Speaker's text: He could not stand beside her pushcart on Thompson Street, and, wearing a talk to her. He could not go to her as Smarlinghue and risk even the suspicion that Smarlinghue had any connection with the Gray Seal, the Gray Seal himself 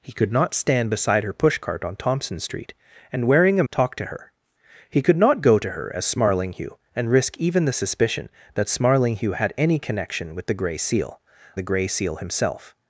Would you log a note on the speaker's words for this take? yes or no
no